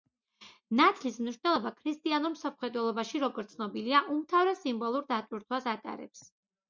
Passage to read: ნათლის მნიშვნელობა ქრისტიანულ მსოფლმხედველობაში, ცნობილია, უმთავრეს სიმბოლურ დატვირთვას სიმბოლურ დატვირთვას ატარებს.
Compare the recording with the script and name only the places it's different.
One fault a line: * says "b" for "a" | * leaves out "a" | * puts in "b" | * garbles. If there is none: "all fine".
* puts in "როგორც"
* leaves out "სიმბოლურ დატვირთვას"